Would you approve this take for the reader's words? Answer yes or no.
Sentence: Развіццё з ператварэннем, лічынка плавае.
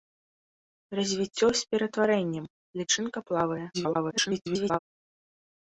no